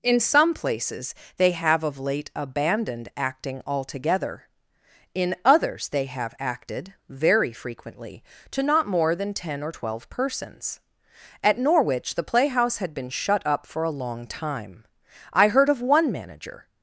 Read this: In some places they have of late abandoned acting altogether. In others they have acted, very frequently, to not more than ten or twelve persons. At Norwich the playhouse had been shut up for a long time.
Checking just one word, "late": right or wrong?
right